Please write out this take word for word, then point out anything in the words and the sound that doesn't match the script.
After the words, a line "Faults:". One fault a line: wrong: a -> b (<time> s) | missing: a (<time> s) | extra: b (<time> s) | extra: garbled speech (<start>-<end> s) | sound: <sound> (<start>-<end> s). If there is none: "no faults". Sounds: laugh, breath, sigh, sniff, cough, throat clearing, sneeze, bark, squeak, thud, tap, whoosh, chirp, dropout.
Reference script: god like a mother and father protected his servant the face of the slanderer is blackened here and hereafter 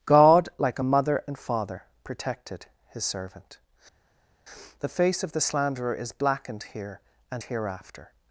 god like a mother and father protected his servant the face of the slanderer is blackened here and hereafter
Faults:
no faults